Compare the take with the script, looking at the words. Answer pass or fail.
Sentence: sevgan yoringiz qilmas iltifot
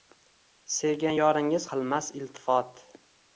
pass